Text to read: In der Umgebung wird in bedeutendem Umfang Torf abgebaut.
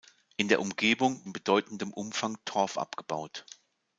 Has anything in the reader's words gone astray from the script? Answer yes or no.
yes